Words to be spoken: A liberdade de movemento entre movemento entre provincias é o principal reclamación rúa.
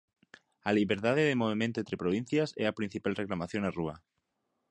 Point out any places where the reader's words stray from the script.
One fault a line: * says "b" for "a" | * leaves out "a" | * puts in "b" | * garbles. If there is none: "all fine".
* leaves out "movemento entre"
* says "a" for "o"
* puts in "na"